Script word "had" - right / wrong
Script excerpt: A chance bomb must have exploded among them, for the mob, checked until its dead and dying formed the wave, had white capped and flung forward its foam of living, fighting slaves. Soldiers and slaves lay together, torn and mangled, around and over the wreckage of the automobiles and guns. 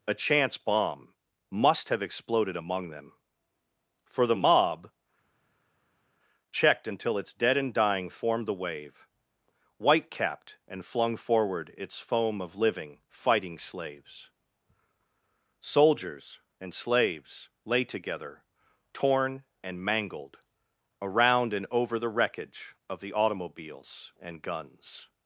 wrong